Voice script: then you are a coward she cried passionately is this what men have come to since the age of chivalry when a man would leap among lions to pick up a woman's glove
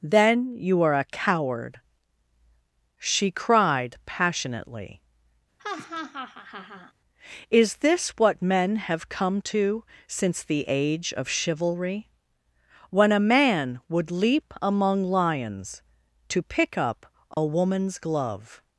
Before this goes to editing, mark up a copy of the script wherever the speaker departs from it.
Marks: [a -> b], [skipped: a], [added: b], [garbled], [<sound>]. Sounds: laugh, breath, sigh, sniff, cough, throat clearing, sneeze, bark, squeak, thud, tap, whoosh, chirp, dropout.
then you are a coward she cried passionately [laugh] is this what men have come to since the age of chivalry when a man would leap among lions to pick up a [dropout] woman's glove